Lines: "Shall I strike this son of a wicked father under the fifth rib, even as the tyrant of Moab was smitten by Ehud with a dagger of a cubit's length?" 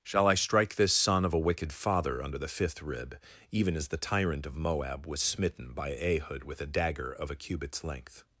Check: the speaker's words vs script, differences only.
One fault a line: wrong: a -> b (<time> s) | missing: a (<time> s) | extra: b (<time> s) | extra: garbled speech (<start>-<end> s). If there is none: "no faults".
no faults